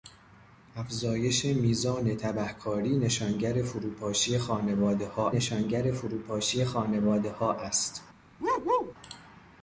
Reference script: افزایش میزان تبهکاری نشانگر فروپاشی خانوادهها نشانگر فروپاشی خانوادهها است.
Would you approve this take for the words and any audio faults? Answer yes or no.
no